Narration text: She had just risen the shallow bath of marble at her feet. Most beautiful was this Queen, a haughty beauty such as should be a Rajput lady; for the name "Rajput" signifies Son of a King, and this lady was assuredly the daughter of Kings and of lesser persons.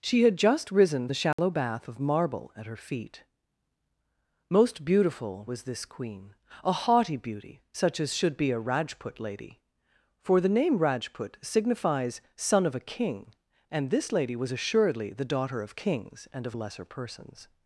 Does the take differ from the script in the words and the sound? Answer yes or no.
yes